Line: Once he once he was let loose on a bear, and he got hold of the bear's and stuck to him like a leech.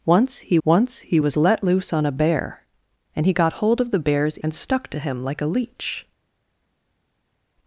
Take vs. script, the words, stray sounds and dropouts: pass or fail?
pass